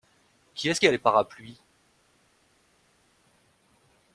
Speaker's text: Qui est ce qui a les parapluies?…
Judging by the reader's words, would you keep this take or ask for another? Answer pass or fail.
pass